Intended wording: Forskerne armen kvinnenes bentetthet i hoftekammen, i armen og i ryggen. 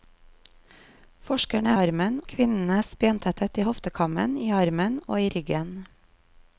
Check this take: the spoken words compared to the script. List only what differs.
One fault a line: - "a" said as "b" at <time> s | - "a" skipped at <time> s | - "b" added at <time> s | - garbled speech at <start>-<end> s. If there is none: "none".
none